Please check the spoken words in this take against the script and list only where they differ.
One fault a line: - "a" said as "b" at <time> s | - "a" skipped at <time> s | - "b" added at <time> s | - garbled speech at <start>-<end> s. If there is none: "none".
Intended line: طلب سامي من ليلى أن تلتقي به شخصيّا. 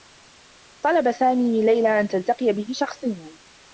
none